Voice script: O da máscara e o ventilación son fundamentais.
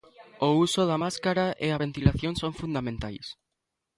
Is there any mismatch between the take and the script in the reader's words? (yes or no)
yes